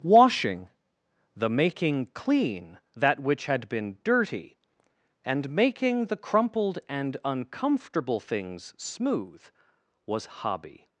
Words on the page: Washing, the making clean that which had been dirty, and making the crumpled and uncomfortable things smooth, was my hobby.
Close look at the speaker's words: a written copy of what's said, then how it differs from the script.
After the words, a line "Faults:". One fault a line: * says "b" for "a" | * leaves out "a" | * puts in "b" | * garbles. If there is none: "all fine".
Washing, the making clean that which had been dirty, and making the crumpled and uncomfortable things smooth, was hobby.
Faults:
* leaves out "my"